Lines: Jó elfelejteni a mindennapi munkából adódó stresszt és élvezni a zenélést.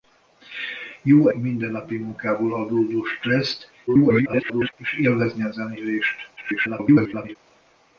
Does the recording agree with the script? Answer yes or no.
no